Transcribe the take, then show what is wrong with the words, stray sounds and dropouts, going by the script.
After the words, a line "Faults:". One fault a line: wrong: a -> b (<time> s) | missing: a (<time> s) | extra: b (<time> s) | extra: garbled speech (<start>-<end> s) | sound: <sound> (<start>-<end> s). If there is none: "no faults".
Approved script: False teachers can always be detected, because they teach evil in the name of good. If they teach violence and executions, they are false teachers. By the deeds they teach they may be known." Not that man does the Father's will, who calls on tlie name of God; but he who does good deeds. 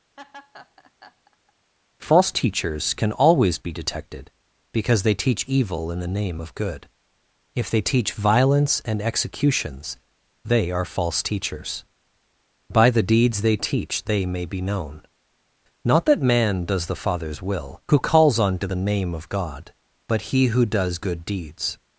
False teachers can always be detected, because they teach evil in the name of good. If they teach violence and executions, they are false teachers. By the deeds they teach they may be known." Not that man does the Father's will, who calls on to the name of God; but he who does good deeds.
Faults:
sound: laugh (0.2-1.5 s)
wrong: tlie -> to the (18.6 s)